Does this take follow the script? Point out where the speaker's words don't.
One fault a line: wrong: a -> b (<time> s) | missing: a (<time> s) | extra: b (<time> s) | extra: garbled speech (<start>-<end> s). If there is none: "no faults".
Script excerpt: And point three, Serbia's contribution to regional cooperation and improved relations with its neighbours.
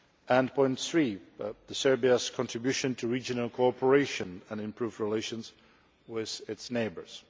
no faults